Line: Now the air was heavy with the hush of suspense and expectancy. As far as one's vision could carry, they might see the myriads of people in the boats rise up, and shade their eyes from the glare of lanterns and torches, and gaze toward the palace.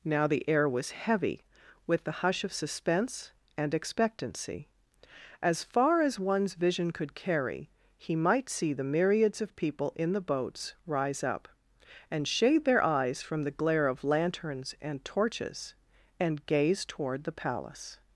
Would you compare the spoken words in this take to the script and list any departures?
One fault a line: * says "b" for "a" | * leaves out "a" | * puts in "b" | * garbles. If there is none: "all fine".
* says "he" for "they"